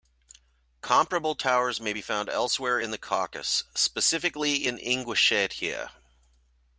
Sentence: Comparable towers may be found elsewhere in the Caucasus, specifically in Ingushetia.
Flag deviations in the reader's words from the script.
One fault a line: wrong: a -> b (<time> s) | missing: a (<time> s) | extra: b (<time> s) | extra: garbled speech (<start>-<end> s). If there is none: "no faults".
no faults